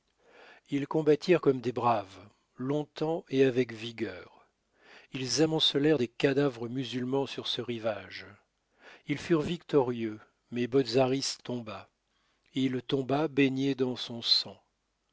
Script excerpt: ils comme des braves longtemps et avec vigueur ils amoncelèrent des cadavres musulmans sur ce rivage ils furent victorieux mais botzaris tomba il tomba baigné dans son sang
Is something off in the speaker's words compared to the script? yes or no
yes